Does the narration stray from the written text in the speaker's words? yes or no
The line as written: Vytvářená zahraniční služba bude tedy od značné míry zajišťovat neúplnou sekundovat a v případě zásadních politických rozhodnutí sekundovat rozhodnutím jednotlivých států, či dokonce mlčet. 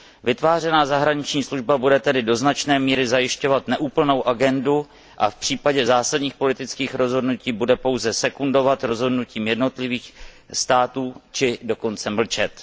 yes